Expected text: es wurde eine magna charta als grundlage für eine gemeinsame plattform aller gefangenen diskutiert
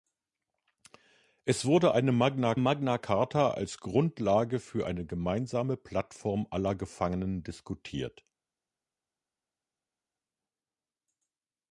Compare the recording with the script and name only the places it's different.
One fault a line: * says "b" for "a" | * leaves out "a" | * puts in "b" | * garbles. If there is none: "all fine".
* puts in "magna"